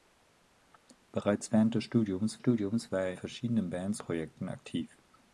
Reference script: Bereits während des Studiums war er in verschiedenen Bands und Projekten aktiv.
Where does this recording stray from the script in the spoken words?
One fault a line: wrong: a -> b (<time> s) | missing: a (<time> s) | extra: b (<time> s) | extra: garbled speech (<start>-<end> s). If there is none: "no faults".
extra: Studiums (2.4 s)
missing: in (3.1 s)
missing: und (4.0 s)